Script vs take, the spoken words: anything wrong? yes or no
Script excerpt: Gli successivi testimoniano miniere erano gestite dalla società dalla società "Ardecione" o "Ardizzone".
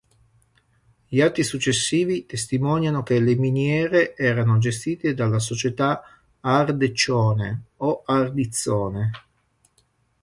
yes